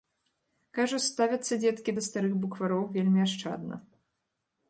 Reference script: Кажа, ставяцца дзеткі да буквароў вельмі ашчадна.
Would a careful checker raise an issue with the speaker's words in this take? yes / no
yes